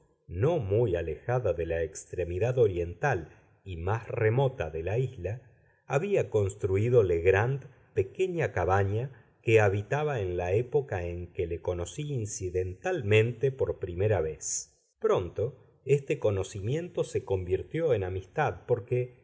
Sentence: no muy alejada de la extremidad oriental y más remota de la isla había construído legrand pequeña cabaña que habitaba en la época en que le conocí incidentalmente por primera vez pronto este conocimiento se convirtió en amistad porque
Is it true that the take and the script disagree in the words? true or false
false